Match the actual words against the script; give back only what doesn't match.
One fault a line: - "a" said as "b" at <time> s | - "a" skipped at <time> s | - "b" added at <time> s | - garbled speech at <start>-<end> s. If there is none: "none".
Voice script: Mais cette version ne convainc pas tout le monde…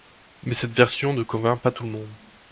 none